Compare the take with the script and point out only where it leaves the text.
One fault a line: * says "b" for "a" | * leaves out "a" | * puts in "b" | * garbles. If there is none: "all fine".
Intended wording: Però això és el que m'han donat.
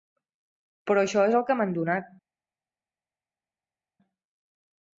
all fine